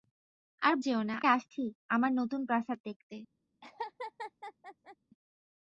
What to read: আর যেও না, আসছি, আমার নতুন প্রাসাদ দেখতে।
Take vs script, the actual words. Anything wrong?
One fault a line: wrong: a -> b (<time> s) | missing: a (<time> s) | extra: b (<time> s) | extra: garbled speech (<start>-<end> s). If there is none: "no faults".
no faults